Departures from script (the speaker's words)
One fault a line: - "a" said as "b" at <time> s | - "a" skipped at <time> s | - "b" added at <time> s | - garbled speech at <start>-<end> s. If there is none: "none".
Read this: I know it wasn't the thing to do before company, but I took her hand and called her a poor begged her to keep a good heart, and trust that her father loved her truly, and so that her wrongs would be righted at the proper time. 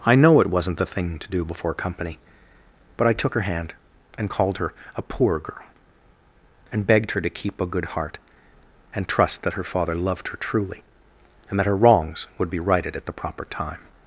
- "girl and" added at 5.4 s
- "so" skipped at 11.6 s